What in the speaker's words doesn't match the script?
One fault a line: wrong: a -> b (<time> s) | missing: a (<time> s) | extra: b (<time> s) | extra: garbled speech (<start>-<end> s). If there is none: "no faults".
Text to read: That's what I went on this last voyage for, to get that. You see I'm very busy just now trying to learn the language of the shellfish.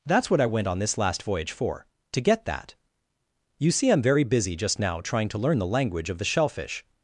no faults